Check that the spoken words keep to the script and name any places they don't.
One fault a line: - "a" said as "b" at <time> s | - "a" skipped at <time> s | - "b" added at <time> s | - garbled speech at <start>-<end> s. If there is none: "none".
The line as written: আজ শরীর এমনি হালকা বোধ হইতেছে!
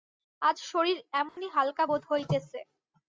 none